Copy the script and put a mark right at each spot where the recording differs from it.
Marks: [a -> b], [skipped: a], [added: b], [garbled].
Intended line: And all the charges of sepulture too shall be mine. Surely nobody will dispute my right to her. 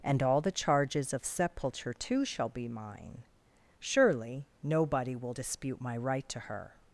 And all the charges of sepulture too shall be mine. Surely nobody will dispute my right to her.